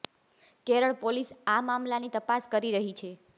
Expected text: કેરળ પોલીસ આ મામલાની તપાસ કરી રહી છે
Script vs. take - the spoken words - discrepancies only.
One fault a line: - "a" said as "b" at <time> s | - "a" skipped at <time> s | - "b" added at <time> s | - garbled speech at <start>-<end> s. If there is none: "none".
none